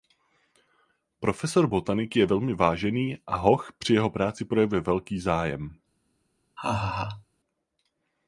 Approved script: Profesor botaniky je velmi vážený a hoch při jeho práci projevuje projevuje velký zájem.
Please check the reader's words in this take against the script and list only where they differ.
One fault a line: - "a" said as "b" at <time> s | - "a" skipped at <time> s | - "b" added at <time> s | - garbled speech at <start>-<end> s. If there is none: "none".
- "projevuje" skipped at 4.8 s